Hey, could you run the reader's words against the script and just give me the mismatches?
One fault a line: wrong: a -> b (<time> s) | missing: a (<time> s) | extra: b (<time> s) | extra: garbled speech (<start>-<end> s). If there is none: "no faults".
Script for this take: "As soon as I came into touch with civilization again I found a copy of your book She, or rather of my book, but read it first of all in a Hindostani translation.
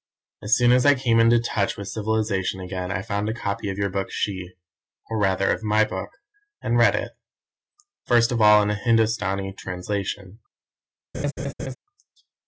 wrong: but -> and (6.6 s)